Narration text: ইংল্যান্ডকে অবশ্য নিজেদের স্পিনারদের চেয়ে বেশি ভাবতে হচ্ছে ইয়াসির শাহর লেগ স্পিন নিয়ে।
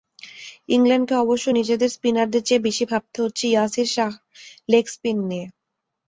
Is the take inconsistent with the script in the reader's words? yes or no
no